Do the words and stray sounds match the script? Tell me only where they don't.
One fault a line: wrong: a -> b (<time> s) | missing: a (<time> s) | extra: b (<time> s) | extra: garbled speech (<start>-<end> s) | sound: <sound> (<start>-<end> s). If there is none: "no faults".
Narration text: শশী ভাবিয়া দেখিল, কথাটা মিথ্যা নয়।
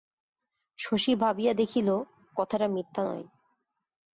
no faults